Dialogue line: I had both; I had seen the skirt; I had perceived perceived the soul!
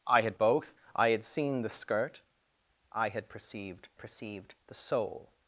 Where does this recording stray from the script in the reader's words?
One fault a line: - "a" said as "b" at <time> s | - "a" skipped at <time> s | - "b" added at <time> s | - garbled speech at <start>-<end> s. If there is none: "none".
none